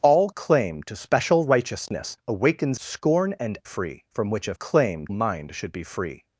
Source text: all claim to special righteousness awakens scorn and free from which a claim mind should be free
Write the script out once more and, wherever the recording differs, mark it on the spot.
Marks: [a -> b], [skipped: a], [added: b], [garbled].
all claim to special righteousness awakens scorn and free from which a claim mind should be free